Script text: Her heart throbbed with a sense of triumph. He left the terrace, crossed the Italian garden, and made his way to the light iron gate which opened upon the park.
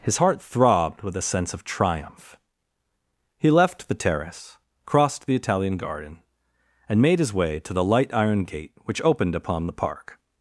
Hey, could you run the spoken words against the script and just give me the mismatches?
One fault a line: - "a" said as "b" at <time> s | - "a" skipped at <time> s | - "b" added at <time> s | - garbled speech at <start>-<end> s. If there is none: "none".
- "Her" said as "His" at 0.0 s